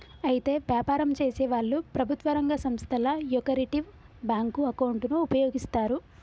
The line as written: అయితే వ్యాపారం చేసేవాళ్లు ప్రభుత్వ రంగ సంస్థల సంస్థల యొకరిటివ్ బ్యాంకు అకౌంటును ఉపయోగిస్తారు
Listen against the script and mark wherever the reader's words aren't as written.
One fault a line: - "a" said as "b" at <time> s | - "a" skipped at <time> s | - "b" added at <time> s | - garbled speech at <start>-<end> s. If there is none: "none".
- "సంస్థల" skipped at 3.0 s